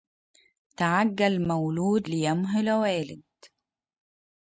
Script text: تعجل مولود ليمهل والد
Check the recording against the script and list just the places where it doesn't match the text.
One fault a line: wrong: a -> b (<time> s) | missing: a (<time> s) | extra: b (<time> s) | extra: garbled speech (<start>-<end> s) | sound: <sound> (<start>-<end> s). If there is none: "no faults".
no faults